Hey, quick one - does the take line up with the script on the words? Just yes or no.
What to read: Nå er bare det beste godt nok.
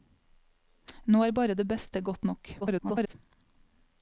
no